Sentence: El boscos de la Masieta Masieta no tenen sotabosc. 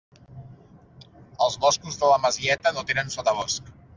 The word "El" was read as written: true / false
false